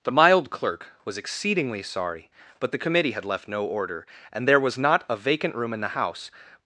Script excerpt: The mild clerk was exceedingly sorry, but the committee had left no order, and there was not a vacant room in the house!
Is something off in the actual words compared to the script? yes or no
no